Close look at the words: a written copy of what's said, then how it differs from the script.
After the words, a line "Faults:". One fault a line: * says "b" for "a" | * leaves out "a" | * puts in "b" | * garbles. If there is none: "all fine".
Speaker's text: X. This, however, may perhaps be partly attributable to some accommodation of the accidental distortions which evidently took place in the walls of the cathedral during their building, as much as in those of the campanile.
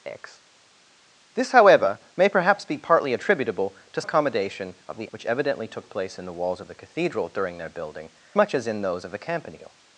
X. This, however, may perhaps be partly attributable to accommodation of the which evidently took place in the walls of the cathedral during their building, much as in those of the campanile.
Faults:
* leaves out "some"
* leaves out "accidental distortions"
* leaves out "as"